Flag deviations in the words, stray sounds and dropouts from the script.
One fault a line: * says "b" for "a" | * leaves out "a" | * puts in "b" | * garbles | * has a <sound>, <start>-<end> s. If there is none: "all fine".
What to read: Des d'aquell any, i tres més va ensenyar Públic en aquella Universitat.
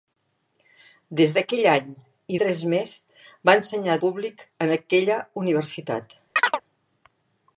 * has a chirp, 6.4-6.6 s